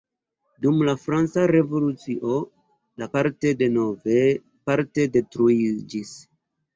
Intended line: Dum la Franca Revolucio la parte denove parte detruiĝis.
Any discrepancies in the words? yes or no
no